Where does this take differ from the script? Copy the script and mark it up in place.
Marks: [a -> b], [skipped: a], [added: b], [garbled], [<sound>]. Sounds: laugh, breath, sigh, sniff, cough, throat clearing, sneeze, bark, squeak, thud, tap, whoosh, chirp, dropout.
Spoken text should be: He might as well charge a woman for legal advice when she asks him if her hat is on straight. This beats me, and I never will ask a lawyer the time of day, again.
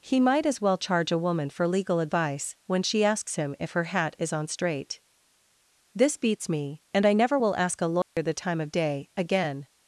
He might as well charge a woman for legal advice when she asks him if her hat is on straight. This beats me, and I never will ask a lawyer [dropout] the time of day, again.